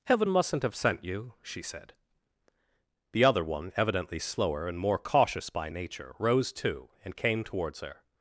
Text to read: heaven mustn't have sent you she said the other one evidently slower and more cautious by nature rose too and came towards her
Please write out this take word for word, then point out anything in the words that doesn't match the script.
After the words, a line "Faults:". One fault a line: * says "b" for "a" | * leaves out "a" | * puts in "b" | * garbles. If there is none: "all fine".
heaven mustn't have sent you she said the other one evidently slower and more cautious by nature rose too and came towards her
Faults:
all fine